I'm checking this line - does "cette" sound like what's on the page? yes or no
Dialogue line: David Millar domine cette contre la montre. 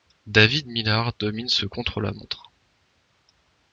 no